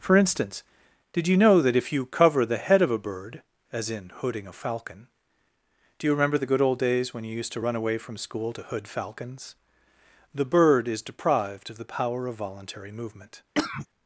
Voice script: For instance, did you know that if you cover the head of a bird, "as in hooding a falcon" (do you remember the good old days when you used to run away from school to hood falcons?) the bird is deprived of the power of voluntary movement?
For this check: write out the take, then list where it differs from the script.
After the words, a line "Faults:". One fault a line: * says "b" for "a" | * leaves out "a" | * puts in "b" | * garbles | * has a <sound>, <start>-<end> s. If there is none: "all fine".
For instance, did you know that if you cover the head of a bird, "as in hooding a falcon" (do you remember the good old days when you used to run away from school to hood falcons?) the bird is deprived of the power of voluntary movement?
Faults:
* has a cough, 13.5-13.9 s